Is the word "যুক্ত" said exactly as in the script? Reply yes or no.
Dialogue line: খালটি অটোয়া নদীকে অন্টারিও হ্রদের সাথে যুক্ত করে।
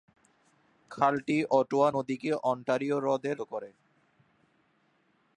no